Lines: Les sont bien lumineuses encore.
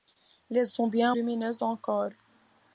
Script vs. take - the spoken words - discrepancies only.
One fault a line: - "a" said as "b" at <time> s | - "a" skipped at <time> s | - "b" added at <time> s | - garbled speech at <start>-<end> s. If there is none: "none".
none